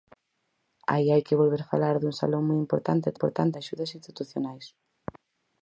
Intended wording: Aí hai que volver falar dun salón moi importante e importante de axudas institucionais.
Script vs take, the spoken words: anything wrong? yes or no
no